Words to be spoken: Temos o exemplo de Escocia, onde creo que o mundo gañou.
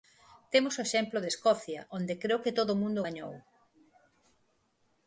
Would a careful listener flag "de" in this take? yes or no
no